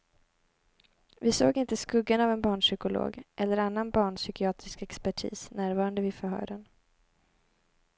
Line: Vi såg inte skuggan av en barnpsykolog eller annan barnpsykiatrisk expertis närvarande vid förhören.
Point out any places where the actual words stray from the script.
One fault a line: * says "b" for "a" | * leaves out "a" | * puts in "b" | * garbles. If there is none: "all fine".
all fine